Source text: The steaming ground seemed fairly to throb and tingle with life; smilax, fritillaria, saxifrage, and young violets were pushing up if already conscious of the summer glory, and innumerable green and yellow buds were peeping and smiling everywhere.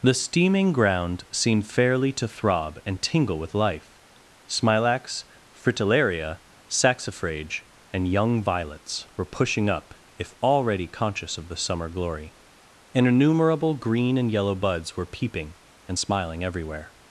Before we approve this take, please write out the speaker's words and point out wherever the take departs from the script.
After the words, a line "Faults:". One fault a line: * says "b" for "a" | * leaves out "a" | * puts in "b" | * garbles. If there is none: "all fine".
The steaming ground seemed fairly to throb and tingle with life; smilax, fritillaria, saxifrage, and young violets were pushing up if already conscious of the summer glory, and innumerable green and yellow buds were peeping and smiling everywhere.
Faults:
all fine